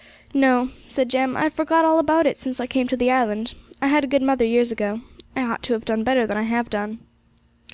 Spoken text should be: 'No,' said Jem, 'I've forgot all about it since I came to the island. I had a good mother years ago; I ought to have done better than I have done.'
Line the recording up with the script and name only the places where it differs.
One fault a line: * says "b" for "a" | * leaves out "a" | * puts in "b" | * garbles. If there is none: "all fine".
all fine